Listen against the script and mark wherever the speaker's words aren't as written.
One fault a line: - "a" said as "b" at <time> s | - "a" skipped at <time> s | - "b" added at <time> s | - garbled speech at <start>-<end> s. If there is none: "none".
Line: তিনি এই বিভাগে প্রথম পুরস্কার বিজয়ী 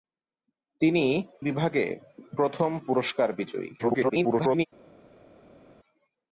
- "এই" skipped at 1.1 s
- garbled speech at 3.8-4.7 s